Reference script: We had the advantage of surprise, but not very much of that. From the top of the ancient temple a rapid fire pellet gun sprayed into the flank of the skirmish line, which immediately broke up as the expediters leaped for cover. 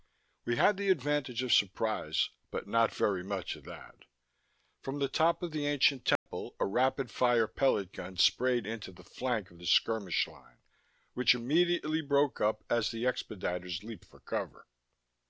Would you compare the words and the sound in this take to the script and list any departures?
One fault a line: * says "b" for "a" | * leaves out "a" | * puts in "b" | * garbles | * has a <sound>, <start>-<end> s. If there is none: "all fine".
* has a dropout, 6.2-6.3 s